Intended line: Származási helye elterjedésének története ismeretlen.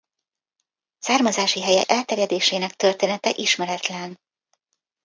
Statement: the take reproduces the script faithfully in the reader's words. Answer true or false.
true